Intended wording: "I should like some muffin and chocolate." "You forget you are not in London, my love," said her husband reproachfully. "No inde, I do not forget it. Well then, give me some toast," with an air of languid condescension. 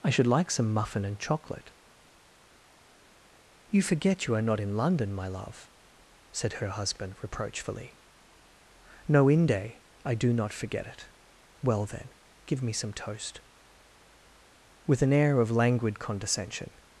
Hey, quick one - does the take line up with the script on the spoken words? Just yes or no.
yes